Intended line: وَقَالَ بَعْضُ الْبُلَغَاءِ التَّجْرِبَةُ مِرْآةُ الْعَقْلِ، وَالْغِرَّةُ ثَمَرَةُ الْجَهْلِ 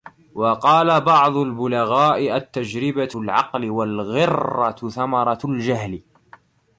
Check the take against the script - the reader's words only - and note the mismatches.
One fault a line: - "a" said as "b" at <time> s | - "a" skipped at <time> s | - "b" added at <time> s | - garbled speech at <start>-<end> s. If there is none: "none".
- "مِرْآةُ" skipped at 3.1 s